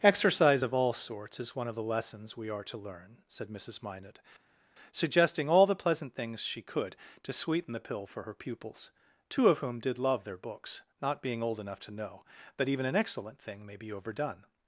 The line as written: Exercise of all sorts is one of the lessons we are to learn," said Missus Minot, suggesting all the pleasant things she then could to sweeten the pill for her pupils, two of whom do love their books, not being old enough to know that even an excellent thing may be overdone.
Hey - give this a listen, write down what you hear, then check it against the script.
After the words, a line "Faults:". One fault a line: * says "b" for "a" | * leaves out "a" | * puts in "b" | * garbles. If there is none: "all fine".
Exercise of all sorts is one of the lessons we are to learn," said Missus Minot, suggesting all the pleasant things she could to sweeten the pill for her pupils, two of whom did love their books, not being old enough to know that even an excellent thing may be overdone.
Faults:
* leaves out "then"
* says "did" for "do"